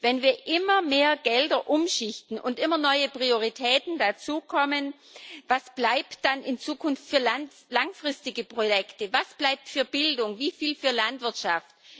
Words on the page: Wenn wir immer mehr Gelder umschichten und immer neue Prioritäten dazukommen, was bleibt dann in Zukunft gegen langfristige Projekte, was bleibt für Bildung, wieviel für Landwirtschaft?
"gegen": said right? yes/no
no